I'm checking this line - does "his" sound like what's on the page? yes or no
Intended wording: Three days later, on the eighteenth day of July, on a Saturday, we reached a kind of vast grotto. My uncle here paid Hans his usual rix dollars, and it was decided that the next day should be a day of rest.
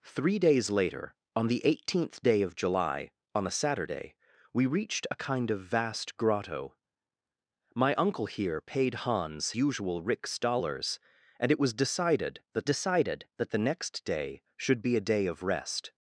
no